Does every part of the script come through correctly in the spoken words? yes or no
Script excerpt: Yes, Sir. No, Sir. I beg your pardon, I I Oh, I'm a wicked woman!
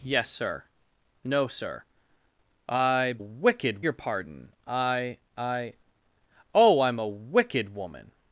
no